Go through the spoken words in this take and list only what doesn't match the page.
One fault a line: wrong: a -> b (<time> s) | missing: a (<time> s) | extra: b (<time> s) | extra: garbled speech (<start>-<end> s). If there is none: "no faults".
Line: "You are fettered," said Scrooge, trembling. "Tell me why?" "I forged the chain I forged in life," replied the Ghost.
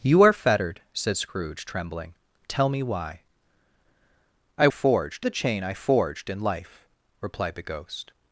no faults